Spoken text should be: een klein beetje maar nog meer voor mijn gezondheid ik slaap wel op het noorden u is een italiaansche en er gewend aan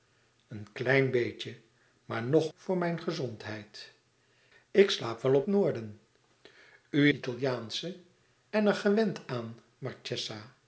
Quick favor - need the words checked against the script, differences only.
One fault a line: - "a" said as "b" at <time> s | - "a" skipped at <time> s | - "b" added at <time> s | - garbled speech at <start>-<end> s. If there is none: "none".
- "meer" skipped at 2.5 s
- "het" skipped at 5.5 s
- "is een" skipped at 7.1 s